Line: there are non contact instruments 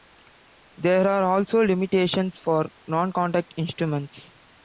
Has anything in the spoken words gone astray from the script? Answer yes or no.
yes